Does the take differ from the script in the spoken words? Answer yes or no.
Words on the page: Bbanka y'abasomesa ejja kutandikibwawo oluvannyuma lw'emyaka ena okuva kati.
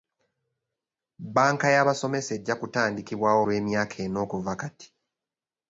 yes